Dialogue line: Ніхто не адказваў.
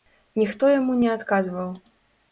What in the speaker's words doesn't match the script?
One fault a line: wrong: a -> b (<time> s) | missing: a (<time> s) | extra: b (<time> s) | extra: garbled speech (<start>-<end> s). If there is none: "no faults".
extra: яму (0.7 s)